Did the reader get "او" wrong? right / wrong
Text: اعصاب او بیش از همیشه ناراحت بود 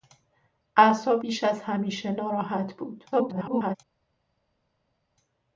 wrong